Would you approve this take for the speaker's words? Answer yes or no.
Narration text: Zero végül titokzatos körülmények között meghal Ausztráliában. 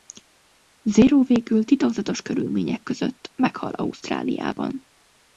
yes